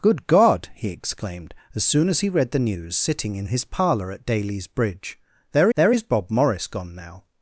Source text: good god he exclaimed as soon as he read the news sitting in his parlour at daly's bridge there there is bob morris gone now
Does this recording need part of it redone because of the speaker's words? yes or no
no